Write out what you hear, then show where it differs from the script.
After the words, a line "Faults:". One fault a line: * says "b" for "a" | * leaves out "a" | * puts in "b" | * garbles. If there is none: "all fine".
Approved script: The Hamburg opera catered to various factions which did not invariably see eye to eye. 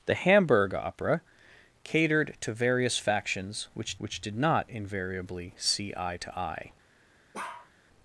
The Hamburg opera catered to various factions which which did not invariably see eye to eye.
Faults:
* puts in "which"